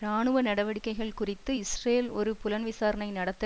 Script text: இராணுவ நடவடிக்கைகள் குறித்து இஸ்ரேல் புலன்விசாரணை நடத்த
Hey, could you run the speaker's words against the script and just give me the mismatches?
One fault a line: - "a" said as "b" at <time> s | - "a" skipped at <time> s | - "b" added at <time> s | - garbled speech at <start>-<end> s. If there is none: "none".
- "ஒரு" added at 2.1 s